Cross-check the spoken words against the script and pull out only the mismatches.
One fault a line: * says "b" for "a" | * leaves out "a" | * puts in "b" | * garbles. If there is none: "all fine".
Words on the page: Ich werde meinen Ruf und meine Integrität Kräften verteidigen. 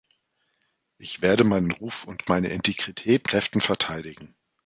all fine